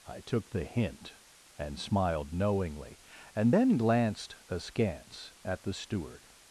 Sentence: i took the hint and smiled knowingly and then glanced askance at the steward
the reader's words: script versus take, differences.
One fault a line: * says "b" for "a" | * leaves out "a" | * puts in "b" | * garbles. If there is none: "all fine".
all fine